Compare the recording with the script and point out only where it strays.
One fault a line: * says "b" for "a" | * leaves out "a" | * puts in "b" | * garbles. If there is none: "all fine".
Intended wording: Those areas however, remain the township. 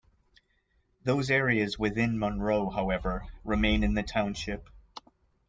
* puts in "within Monroe"
* puts in "in"